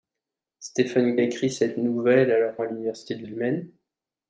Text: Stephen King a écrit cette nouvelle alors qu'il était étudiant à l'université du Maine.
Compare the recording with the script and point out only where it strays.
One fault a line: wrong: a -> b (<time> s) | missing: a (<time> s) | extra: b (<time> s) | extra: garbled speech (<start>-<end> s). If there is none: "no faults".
missing: King (1.1 s)
missing: qu'il était étudiant (2.6 s)
extra: du (3.2 s)